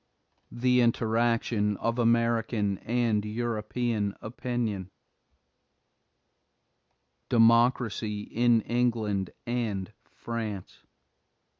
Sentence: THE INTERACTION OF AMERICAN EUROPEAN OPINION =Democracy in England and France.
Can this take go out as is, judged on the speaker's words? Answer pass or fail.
fail